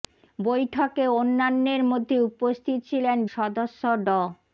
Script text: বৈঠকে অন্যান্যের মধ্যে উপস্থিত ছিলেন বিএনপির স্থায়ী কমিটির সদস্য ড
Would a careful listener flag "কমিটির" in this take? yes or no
yes